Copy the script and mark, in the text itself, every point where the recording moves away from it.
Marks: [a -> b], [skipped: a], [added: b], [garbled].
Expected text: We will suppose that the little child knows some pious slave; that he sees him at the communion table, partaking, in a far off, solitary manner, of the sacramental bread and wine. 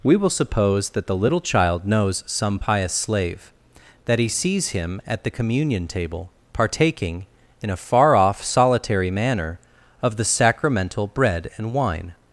We will suppose that the little child knows some pious slave; that he sees him at the communion table, partaking, in a far off, solitary manner, of the sacramental bread and wine.